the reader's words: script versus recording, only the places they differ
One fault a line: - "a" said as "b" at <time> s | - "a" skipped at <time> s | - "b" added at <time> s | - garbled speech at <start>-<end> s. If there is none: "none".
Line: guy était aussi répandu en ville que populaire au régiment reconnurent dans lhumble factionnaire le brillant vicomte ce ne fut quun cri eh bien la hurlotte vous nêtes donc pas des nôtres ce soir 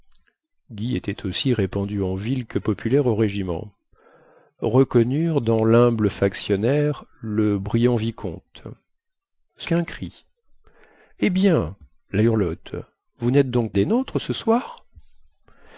- "ne fut" skipped at 9.7 s
- "pas" skipped at 13.7 s